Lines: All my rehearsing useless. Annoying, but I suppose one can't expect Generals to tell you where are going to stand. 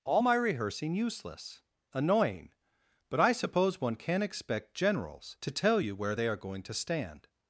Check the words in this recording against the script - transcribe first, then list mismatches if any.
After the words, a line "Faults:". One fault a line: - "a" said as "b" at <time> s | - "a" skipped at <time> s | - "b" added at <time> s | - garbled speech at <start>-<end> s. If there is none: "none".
All my rehearsing useless. Annoying, but I suppose one can't expect Generals to tell you where they are going to stand.
Faults:
- "they" added at 6.1 s